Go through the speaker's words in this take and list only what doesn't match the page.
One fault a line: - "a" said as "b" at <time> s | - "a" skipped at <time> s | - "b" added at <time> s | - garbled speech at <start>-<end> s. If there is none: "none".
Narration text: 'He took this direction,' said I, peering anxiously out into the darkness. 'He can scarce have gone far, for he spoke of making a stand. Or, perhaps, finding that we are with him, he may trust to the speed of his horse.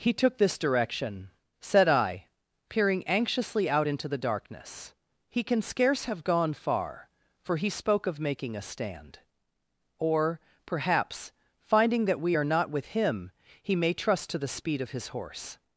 - "not" added at 12.5 s